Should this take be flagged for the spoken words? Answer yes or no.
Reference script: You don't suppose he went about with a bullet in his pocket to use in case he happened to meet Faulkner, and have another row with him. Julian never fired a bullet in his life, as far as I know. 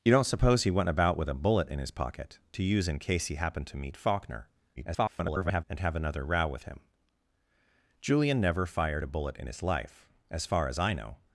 yes